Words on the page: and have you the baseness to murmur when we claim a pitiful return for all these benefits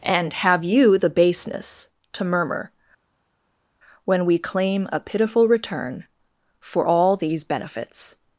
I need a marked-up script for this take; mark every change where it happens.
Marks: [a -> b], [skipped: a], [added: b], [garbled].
and have you the baseness to murmur when we claim a pitiful return for all these benefits